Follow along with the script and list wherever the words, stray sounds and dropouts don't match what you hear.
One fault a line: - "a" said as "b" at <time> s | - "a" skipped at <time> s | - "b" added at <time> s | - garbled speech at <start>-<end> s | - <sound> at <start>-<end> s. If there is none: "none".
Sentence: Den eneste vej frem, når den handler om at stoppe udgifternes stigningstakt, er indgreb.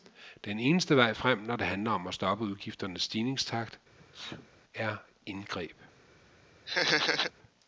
- "den" said as "det" at 1.6 s
- sneeze at 4.0-4.6 s
- laugh at 6.7-7.3 s